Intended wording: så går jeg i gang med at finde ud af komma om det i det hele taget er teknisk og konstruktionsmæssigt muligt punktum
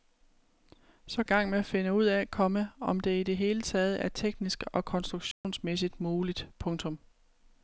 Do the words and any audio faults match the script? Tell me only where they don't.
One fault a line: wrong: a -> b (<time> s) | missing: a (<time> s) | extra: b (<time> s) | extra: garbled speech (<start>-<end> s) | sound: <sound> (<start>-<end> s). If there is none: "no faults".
missing: går jeg (1.2 s)
sound: dropout (5.3-5.4 s)